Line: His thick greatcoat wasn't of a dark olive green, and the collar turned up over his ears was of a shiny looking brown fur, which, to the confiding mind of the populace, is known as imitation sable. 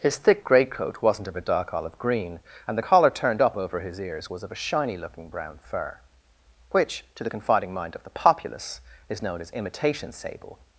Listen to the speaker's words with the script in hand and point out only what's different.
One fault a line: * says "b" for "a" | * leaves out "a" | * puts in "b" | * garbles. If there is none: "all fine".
all fine